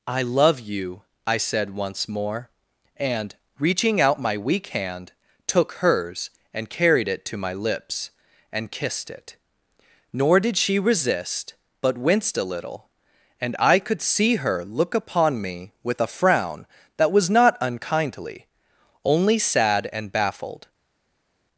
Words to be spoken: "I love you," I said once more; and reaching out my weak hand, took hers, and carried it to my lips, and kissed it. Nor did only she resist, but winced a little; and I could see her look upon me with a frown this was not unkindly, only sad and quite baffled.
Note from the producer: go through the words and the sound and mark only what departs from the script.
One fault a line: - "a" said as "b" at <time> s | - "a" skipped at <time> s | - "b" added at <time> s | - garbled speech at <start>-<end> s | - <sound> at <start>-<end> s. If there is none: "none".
- "only" skipped at 10.6 s
- "this" said as "that" at 17.0 s
- "quite" skipped at 20.1 s